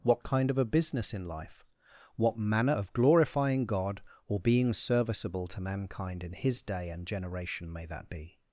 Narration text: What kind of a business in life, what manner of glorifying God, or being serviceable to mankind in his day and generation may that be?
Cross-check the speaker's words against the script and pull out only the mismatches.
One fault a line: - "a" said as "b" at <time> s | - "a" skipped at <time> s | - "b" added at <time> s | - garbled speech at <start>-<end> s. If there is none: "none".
none